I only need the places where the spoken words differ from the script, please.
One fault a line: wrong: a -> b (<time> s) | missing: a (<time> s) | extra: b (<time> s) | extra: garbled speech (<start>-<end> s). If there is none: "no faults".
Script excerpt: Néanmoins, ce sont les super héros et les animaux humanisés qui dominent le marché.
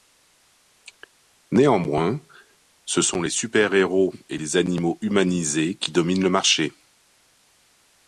no faults